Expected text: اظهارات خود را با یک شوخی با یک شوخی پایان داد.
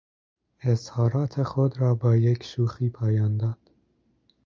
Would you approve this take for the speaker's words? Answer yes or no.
no